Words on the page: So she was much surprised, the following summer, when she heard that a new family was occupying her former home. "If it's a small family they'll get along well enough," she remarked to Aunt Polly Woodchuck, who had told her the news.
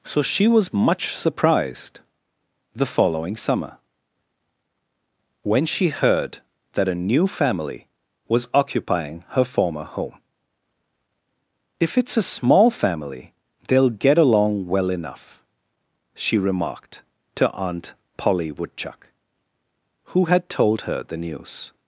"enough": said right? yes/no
yes